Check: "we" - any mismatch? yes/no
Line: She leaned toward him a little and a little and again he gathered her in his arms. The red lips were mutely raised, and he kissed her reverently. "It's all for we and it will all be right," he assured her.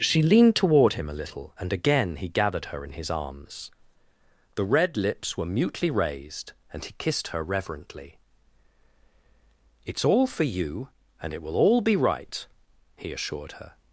yes